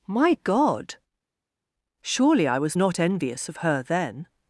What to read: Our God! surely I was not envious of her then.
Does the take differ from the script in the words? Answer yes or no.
yes